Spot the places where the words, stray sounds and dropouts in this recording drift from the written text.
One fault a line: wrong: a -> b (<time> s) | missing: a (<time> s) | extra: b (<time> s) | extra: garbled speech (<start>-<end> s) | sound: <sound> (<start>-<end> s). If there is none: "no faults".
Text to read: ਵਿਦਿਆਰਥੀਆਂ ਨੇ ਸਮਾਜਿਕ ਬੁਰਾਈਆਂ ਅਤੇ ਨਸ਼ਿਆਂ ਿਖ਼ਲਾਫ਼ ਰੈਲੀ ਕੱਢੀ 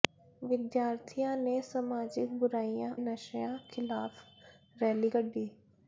missing: ਅਤੇ (2.9 s)